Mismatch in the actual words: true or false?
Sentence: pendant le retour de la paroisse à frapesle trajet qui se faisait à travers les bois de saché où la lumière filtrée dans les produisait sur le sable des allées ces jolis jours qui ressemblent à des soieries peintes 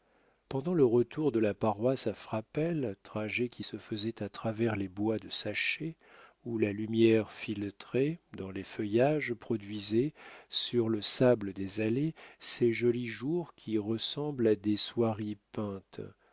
true